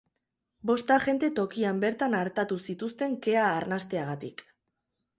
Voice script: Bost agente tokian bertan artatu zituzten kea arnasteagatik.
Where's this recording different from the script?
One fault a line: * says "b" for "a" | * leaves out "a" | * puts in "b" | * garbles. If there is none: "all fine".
all fine